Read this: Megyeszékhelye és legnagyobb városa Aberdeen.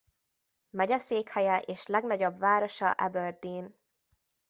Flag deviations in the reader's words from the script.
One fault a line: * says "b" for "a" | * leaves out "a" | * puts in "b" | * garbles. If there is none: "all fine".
all fine